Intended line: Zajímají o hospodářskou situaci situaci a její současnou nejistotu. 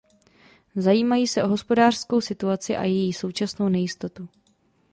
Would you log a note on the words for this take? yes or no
yes